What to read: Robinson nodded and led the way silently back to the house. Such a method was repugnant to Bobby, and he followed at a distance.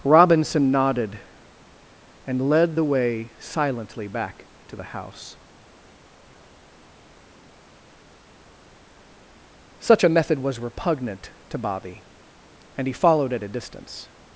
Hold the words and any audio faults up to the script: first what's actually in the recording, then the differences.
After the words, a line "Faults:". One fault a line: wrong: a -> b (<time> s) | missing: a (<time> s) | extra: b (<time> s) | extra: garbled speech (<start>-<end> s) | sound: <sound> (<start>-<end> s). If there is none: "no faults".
Robinson nodded and led the way silently back to the house. Such a method was repugnant to Bobby, and he followed at a distance.
Faults:
no faults